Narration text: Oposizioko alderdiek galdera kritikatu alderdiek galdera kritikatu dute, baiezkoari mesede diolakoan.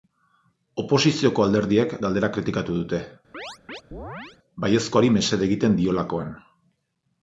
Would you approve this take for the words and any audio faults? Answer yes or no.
no